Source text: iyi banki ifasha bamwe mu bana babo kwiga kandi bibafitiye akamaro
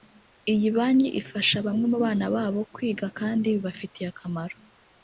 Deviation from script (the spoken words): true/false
false